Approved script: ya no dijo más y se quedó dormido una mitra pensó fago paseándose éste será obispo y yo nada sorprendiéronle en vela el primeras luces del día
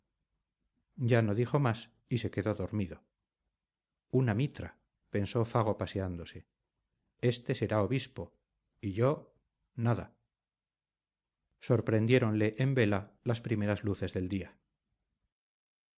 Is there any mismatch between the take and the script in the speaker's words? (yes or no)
yes